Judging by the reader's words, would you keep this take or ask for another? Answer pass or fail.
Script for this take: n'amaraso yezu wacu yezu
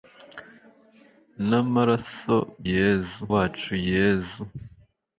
pass